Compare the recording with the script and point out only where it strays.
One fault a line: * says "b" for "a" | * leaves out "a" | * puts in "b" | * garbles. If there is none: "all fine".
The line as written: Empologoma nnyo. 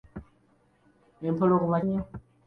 all fine